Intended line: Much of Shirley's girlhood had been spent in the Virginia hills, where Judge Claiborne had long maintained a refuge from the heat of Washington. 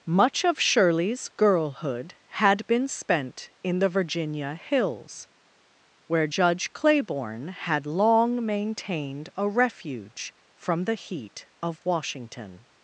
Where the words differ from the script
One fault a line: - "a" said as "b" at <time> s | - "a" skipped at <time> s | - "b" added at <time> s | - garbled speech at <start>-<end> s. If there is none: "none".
none